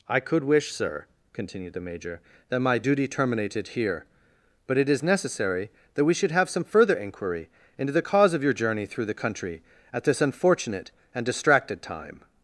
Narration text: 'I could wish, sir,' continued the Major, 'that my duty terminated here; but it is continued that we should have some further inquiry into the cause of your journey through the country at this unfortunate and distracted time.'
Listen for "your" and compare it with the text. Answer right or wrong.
right